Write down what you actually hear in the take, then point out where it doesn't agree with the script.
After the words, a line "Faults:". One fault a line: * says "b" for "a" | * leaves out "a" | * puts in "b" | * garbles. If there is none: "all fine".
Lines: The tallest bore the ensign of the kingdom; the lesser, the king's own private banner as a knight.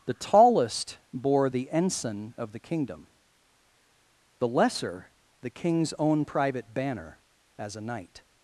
The tallest bore the ensign of the kingdom; the lesser, the king's own private banner as a knight.
Faults:
all fine